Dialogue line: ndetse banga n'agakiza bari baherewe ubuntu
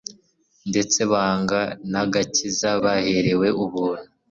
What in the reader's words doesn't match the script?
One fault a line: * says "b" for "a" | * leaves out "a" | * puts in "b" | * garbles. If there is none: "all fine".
* leaves out "bari"